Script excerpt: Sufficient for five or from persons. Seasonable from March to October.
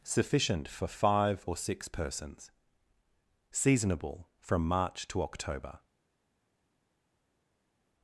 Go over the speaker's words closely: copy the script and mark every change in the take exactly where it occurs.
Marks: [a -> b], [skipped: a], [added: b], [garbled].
Sufficient for five or [from -> six] persons. Seasonable from March to October.